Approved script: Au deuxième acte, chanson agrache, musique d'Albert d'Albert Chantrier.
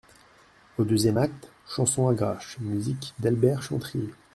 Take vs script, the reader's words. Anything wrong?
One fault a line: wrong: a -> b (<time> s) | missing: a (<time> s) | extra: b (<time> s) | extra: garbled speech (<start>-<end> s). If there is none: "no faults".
missing: d'Albert (3.6 s)